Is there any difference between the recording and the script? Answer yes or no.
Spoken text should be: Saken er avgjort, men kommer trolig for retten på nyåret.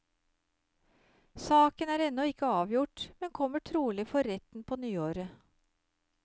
yes